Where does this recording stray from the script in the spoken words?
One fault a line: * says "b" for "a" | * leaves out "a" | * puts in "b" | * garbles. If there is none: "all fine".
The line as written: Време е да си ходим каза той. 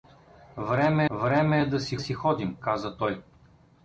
* puts in "време"
* puts in "си"